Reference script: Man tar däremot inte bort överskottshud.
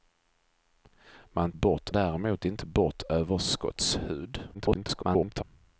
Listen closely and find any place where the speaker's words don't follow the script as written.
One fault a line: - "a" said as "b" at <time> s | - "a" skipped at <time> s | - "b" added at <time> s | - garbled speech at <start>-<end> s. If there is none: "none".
- "tar" said as "bort" at 1.5 s
- garbled speech at 4.5-5.4 s